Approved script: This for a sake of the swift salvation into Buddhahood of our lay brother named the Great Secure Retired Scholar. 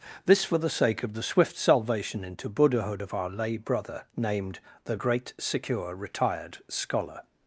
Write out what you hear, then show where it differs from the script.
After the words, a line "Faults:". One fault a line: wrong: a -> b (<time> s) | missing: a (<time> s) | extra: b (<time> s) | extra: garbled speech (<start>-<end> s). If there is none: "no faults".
This for the sake of the swift salvation into Buddhahood of our lay brother named the Great Secure Retired Scholar.
Faults:
wrong: a -> the (0.6 s)